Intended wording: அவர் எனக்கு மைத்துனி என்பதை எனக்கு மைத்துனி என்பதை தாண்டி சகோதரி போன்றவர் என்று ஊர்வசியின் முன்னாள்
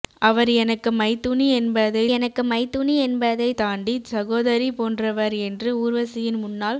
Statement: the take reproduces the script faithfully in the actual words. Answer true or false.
true